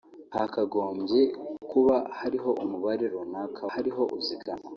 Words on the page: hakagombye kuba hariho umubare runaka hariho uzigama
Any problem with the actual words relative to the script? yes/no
no